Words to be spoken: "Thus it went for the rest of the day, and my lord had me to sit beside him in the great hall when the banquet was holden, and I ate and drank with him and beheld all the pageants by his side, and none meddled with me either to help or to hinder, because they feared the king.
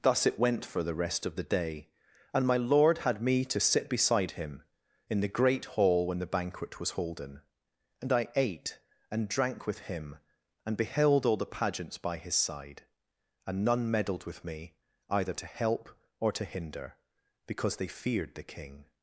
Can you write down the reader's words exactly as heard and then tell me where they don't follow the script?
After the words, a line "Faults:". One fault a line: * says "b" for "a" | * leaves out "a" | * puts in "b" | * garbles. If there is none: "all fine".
"Thus it went for the rest of the day, and my lord had me to sit beside him in the great hall when the banquet was holden, and I ate and drank with him and beheld all the pageants by his side, and none meddled with me either to help or to hinder, because they feared the king.
Faults:
all fine